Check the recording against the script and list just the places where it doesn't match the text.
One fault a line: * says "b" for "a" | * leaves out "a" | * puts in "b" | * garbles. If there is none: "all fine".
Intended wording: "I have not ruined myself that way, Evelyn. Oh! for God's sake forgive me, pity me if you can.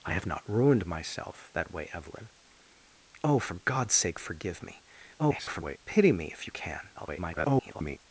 * garbles
* garbles